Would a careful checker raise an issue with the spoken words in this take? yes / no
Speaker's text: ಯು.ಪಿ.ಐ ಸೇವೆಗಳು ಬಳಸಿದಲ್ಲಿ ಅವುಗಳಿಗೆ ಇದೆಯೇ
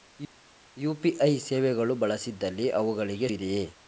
no